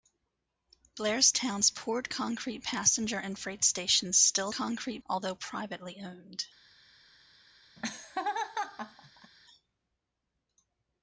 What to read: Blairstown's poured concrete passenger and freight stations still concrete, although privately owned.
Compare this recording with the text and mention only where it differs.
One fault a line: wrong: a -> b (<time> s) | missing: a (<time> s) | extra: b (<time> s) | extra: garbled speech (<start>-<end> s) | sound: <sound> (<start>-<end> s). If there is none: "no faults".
sound: laugh (7.8-9.3 s)